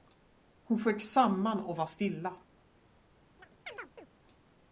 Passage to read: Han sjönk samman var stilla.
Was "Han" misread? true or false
true